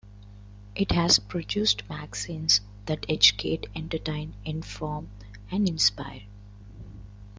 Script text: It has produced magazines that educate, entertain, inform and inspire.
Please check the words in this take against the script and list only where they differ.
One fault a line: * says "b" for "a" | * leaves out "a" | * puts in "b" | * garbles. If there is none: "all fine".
all fine